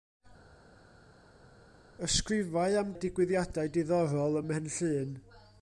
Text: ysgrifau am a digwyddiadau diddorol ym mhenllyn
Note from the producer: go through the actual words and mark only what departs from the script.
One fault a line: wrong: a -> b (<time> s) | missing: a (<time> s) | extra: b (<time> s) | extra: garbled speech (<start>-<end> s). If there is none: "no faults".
no faults